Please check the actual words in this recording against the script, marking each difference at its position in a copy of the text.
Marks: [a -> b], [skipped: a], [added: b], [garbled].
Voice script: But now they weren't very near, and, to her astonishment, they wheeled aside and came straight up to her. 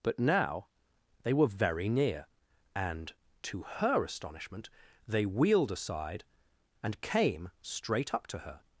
But now they [weren't -> were] very near, and, to her astonishment, they wheeled aside and came straight up to her.